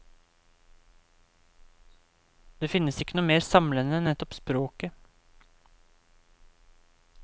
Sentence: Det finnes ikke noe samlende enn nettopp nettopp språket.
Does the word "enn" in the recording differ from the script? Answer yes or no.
no